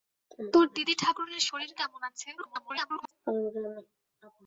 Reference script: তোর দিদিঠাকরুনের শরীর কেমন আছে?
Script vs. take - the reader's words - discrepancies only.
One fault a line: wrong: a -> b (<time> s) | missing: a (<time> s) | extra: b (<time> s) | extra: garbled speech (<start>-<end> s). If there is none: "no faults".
extra: garbled speech (2.4-3.1 s)